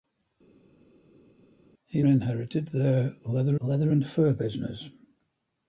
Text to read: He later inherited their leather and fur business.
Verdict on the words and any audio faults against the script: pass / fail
fail